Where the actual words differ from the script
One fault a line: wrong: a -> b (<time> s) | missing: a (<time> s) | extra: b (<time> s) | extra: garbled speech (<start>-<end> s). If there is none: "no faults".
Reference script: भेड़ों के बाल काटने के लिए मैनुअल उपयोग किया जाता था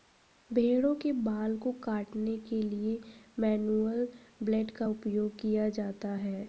extra: को (1.6 s)
extra: ब्लेड का (4.4 s)
wrong: था -> है (6.1 s)